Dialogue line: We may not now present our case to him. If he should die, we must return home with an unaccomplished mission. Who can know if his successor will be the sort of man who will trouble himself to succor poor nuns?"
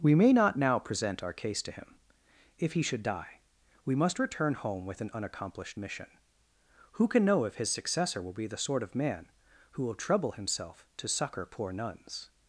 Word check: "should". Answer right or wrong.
right